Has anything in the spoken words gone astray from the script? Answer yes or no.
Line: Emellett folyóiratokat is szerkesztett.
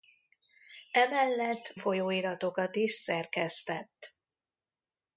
no